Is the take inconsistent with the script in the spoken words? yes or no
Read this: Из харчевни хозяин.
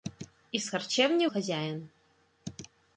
no